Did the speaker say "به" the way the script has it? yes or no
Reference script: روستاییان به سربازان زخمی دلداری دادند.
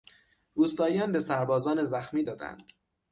yes